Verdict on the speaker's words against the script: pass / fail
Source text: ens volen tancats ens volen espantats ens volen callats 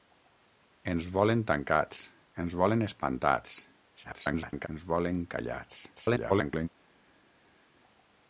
fail